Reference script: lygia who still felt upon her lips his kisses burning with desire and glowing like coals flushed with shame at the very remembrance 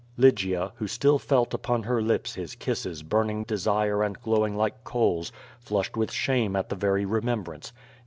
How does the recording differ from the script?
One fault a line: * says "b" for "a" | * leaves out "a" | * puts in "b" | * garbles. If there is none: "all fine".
* leaves out "with"